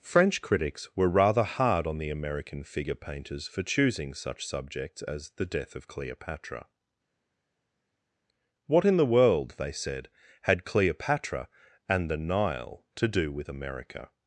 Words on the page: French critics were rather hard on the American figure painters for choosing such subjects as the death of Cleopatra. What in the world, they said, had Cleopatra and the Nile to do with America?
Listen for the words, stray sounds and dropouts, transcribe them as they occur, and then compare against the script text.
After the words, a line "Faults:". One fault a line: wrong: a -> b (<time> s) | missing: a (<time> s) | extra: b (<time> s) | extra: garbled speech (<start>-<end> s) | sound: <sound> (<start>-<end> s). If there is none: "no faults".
French critics were rather hard on the American figure painters for choosing such subjects as the death of Cleopatra. What in the world, they said, had Cleopatra and the Nile to do with America?
Faults:
no faults